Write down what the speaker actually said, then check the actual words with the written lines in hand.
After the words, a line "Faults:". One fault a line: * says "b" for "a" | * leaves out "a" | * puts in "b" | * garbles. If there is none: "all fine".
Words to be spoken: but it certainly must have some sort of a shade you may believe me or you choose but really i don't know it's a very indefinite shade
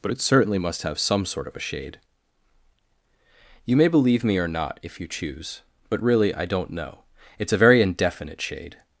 but it certainly must have some sort of a shade you may believe me or not if you choose but really i don't know it's a very indefinite shade
Faults:
* puts in "not if"